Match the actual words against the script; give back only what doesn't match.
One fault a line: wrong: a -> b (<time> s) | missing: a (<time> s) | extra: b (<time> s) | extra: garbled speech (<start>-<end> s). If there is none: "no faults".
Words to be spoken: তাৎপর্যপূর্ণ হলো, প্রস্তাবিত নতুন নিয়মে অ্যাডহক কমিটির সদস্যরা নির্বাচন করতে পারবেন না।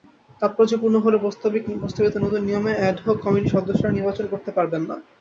no faults